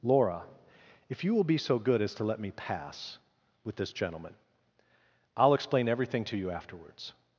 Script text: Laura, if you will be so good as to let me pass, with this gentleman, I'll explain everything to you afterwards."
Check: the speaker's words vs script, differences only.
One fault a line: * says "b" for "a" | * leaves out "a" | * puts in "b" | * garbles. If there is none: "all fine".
all fine